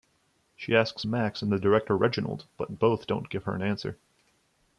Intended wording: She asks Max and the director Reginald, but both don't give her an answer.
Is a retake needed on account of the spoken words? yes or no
no